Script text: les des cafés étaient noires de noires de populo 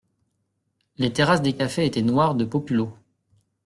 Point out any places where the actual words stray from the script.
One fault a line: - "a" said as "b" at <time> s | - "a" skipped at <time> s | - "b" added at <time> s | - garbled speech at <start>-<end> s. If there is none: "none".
- "terrasses" added at 1.1 s
- "noires de" skipped at 2.4 s